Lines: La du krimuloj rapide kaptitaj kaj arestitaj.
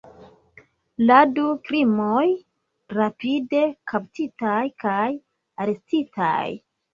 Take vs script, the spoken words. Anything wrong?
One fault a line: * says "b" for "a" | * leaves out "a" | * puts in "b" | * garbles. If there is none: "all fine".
all fine